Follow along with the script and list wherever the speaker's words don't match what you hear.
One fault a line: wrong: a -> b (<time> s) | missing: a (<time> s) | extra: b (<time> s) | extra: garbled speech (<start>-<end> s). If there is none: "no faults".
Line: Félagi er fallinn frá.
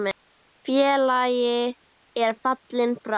no faults